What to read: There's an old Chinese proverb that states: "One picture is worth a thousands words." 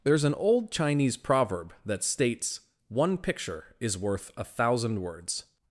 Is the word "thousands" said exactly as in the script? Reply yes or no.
no